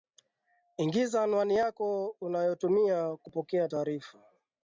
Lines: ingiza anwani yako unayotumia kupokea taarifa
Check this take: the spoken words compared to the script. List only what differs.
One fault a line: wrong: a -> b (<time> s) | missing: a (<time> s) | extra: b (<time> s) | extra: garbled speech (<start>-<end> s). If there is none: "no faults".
no faults